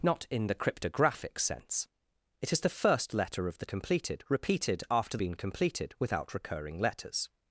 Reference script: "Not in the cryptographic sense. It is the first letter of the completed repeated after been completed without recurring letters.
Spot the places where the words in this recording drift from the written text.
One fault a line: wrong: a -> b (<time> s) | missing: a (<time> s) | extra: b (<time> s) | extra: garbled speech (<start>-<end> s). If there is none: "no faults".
no faults